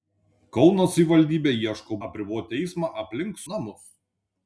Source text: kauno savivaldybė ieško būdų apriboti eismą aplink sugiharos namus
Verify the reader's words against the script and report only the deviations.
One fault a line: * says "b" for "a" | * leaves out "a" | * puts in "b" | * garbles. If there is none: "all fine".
* leaves out "būdų"
* leaves out "sugiharos"